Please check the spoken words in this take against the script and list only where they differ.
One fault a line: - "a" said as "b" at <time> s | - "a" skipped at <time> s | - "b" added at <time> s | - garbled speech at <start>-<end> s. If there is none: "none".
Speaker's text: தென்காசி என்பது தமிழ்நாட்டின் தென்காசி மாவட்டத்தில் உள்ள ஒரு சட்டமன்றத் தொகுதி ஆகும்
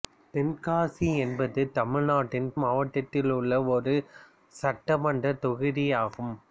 - "தென்காசி" skipped at 2.5 s